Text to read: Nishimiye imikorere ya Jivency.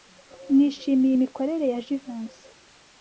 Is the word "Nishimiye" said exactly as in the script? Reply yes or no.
yes